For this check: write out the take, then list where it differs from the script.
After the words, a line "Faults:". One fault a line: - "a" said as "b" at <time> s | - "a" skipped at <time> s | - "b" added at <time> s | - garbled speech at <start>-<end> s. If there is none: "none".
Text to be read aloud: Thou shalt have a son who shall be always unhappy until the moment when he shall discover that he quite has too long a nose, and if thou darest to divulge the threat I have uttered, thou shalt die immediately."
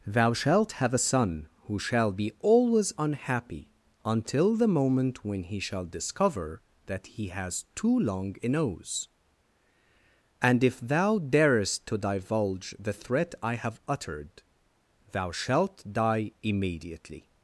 Thou shalt have a son who shall be always unhappy until the moment when he shall discover that he has too long a nose, and if thou darest to divulge the threat I have uttered, thou shalt die immediately."
Faults:
- "quite" skipped at 7.3 s